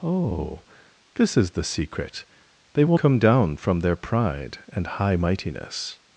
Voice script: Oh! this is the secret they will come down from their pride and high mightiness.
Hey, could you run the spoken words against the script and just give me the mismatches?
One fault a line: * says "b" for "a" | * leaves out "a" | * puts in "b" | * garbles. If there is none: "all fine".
all fine